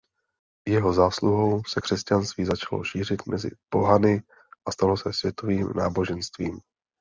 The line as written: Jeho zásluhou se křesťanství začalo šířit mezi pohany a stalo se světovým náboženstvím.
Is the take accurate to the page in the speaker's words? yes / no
yes